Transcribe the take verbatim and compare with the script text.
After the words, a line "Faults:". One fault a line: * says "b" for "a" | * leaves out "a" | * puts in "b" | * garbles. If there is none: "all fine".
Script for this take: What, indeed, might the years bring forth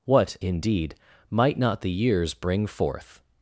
What, indeed, might not the years bring forth
Faults:
* puts in "not"